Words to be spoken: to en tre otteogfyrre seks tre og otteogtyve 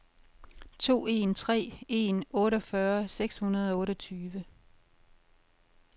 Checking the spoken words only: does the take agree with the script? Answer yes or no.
no